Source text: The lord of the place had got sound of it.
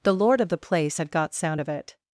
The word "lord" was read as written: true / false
true